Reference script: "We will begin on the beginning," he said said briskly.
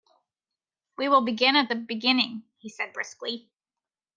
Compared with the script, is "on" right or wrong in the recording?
wrong